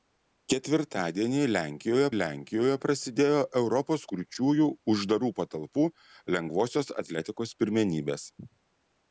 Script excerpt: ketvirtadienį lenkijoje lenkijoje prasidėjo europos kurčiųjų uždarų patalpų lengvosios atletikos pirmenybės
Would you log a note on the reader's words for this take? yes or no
no